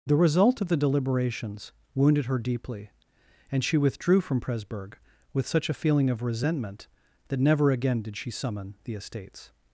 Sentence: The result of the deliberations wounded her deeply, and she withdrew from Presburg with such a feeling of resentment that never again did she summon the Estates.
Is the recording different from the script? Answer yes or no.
no